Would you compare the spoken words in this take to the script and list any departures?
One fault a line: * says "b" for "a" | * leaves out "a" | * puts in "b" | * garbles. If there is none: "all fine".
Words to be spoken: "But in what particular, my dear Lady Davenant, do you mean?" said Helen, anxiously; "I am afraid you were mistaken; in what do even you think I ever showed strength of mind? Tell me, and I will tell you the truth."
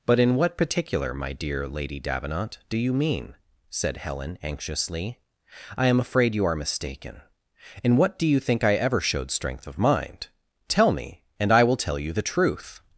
* says "are" for "were"
* leaves out "even"